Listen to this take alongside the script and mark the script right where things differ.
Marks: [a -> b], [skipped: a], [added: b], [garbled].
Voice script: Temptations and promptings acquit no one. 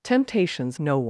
Temptations [skipped: and promptings acquit] no one.